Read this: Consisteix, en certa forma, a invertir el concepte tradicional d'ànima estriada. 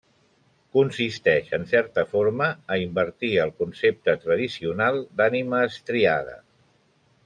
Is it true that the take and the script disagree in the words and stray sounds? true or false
false